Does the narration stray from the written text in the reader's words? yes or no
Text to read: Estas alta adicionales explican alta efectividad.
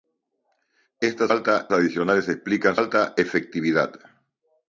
no